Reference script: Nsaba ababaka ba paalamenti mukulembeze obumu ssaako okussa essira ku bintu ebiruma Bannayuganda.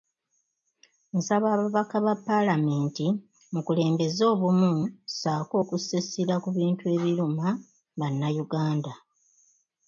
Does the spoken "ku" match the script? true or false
true